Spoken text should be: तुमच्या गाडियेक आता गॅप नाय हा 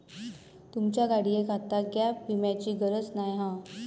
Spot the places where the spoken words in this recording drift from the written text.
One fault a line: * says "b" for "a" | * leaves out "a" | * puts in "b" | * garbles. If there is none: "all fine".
* puts in "विम्याची गरज"